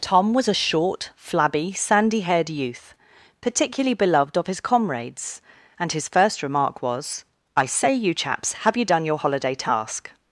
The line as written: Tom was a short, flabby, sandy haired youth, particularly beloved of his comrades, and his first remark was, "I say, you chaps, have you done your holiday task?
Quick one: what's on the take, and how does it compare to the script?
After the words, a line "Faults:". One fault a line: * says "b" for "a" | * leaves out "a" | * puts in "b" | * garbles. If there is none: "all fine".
Tom was a short, flabby, sandy haired youth, particularly beloved of his comrades, and his first remark was, "I say, you chaps, have you done your holiday task?
Faults:
all fine